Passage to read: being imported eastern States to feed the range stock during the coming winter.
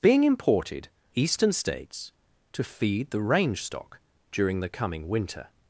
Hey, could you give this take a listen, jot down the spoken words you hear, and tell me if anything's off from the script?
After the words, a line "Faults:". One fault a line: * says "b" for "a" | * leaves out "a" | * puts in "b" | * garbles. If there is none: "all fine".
being imported eastern States to feed the range stock during the coming winter.
Faults:
all fine